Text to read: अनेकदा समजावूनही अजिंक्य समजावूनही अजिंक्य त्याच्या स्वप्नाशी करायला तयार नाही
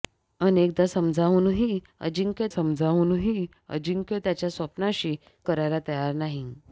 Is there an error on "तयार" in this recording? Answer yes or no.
no